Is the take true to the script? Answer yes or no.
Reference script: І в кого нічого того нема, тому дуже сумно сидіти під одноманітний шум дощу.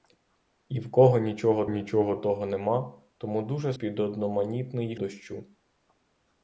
no